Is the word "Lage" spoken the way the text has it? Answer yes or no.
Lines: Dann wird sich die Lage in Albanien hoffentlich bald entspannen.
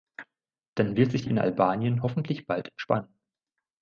no